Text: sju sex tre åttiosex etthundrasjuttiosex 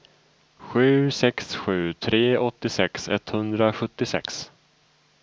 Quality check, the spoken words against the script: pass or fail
fail